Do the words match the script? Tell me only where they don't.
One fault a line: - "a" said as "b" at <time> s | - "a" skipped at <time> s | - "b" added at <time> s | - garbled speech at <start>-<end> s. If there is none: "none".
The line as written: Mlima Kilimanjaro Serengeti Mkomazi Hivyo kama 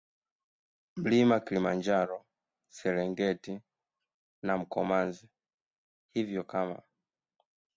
- "na" added at 4.4 s